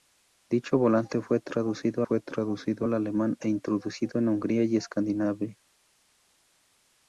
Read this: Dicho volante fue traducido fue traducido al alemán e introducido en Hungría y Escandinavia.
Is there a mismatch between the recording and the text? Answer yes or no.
no